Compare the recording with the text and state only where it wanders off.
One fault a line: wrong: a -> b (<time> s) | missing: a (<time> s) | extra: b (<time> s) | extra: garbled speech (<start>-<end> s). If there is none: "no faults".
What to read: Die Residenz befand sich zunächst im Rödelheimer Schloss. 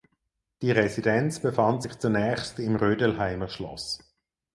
no faults